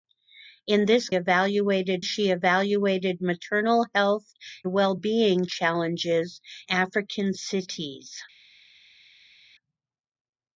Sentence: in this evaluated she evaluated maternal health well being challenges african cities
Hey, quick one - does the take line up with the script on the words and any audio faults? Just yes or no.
yes